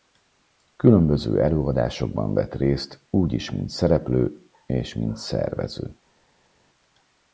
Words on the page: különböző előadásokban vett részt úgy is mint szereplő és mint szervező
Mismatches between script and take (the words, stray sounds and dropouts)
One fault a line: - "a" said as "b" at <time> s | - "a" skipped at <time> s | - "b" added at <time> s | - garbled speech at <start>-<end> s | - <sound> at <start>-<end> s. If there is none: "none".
none